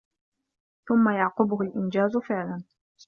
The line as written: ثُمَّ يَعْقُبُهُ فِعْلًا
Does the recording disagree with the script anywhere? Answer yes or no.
yes